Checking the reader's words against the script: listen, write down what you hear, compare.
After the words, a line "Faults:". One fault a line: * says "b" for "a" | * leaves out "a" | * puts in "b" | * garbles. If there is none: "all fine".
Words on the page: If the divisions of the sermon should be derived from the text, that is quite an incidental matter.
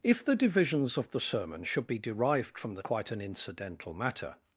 If the divisions of the sermon should be derived from the quite an incidental matter.
Faults:
* leaves out "text that is"